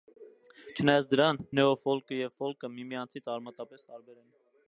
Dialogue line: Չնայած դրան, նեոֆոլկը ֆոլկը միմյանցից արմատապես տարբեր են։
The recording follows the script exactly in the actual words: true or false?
false